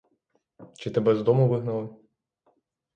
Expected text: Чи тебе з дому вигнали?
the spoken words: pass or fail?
pass